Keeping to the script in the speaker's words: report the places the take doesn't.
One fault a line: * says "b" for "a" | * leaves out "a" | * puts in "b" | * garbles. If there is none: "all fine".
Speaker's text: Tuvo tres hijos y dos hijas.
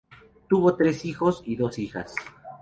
all fine